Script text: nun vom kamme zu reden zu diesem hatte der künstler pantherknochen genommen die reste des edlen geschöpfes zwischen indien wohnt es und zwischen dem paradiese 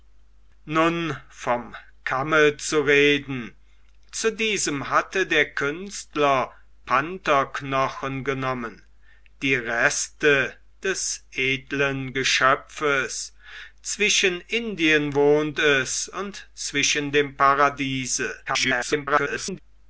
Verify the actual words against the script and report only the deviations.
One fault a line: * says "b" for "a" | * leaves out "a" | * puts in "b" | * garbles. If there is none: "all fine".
* garbles